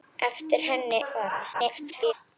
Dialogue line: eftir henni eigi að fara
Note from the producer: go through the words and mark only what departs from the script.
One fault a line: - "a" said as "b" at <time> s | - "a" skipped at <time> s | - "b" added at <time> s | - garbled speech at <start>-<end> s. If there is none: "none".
- "eigi" skipped at 1.0 s
- garbled speech at 1.5-2.1 s